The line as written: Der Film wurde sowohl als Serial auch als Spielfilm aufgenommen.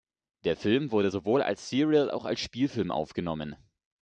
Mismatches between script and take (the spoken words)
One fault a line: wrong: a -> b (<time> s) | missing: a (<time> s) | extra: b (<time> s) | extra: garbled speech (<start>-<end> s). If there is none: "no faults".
no faults